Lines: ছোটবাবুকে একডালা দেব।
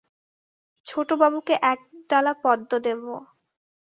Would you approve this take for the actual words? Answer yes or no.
no